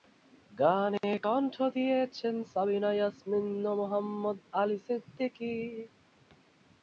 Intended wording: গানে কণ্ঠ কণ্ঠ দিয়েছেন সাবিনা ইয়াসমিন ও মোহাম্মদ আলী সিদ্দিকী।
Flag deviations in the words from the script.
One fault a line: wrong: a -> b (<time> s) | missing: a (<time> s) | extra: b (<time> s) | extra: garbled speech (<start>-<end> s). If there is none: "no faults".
missing: কণ্ঠ (1.5 s)